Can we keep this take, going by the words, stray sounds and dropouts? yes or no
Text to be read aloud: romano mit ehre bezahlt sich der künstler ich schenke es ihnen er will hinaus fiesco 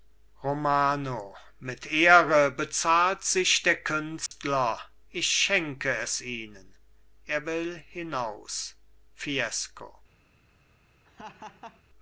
no